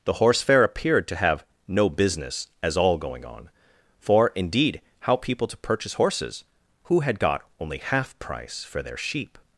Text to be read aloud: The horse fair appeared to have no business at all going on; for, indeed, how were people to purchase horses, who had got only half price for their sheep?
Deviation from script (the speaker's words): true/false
true